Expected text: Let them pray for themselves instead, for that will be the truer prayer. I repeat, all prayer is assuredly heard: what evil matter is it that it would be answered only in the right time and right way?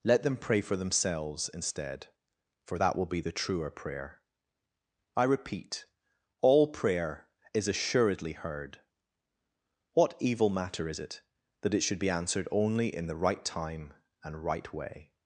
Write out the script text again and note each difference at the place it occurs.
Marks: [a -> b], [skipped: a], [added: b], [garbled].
Let them pray for themselves instead, for that will be the truer prayer. I repeat, all prayer is assuredly heard: what evil matter is it that it [would -> should] be answered only in the right time and right way?